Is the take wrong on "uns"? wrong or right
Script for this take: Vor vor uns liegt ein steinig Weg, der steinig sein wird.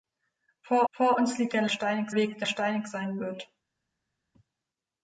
right